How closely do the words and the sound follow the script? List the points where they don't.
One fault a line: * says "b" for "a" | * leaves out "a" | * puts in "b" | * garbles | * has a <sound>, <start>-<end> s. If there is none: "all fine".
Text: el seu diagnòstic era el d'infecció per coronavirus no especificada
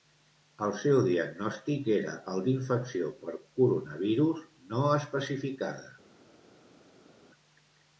all fine